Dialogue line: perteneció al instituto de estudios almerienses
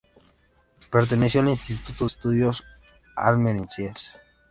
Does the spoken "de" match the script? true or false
false